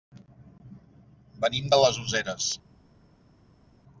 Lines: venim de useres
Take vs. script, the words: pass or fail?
fail